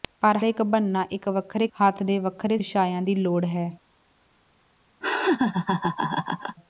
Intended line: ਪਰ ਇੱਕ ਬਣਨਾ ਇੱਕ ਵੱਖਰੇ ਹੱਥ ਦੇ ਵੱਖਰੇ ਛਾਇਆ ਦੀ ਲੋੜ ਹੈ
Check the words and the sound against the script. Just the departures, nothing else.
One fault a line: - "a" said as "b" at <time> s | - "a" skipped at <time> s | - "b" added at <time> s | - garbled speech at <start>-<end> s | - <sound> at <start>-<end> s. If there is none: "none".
- laugh at 5.0-6.6 s